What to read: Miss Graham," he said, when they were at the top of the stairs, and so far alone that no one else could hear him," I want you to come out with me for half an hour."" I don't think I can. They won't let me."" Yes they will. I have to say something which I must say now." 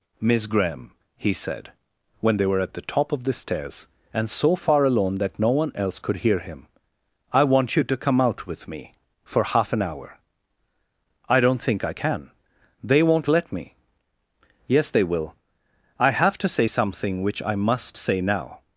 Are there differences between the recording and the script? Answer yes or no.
no